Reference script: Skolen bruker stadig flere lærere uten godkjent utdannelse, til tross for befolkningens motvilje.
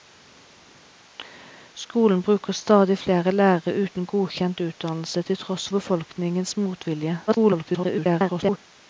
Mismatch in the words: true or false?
true